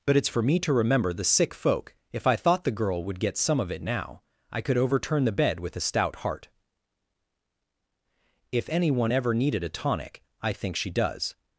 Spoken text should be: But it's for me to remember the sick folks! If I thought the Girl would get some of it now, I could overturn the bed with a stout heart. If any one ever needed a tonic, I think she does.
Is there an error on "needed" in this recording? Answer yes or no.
no